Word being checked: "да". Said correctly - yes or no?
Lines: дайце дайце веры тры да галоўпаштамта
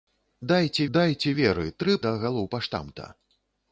yes